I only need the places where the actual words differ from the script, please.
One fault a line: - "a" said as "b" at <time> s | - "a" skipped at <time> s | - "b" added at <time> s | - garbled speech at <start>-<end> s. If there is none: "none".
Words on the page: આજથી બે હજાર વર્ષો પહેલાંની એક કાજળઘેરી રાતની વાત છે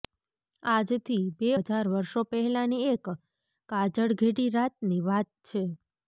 none